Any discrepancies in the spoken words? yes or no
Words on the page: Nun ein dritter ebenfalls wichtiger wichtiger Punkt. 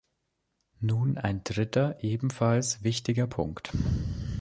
yes